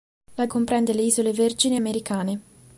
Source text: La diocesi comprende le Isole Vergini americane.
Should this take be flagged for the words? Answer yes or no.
yes